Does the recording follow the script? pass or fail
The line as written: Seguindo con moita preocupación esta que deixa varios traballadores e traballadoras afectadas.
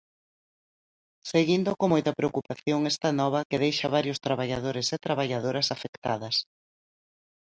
fail